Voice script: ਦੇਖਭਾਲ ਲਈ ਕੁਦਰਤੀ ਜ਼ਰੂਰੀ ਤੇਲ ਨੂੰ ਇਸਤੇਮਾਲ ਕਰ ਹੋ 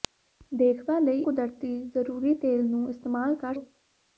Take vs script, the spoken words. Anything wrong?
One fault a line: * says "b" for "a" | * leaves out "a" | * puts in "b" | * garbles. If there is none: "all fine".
all fine